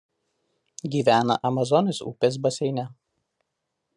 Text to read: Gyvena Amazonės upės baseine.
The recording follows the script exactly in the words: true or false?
true